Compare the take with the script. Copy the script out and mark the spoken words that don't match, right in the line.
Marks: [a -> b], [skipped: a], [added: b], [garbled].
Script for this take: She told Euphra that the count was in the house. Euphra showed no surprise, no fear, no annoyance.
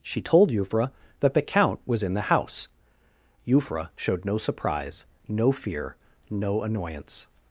She told Euphra that the count was in the house. Euphra showed no surprise, no fear, no annoyance.